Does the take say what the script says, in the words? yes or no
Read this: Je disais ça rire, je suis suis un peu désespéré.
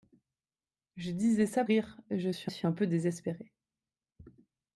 yes